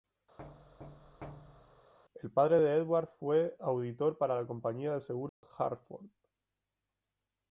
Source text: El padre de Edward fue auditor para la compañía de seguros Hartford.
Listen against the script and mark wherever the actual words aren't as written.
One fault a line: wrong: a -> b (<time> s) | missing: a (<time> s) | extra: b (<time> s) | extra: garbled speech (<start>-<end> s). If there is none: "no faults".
no faults